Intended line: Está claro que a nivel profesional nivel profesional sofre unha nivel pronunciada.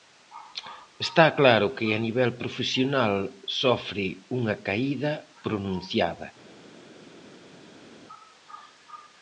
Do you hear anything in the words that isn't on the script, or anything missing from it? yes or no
yes